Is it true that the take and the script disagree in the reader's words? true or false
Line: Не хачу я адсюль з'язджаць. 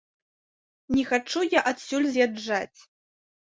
false